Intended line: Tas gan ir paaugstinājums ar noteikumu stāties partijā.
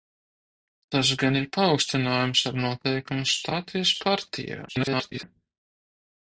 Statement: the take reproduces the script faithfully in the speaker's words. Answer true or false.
false